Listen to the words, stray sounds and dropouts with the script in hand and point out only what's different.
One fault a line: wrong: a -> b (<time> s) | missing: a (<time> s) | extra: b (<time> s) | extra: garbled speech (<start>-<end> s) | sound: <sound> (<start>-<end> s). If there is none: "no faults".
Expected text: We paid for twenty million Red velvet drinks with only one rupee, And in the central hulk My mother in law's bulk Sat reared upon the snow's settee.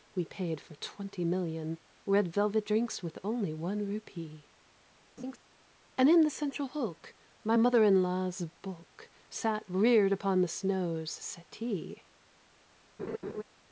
sound: laugh (5.2-5.4 s)
sound: laugh (13.0-13.4 s)